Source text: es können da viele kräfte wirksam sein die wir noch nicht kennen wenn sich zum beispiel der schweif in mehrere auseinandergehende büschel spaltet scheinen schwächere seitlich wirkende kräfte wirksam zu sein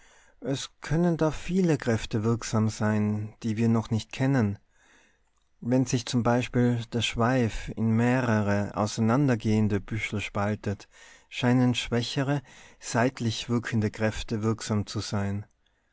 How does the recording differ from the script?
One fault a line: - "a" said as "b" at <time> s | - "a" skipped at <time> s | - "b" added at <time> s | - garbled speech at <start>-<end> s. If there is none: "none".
none